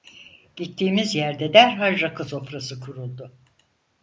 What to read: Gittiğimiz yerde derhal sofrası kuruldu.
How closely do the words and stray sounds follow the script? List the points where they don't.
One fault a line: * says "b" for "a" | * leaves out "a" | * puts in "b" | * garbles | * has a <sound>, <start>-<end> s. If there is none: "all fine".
* puts in "rakı"